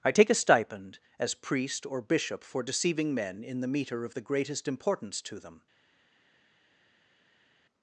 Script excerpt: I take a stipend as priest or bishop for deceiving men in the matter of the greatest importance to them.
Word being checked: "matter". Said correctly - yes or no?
no